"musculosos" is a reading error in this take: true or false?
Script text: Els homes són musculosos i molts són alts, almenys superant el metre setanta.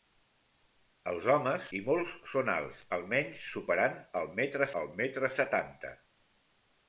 true